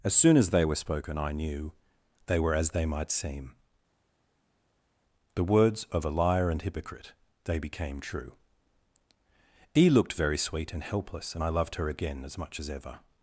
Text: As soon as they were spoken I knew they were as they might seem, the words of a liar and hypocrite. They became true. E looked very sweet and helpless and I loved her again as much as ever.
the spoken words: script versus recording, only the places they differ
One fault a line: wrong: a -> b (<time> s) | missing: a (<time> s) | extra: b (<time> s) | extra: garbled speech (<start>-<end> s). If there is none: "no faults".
no faults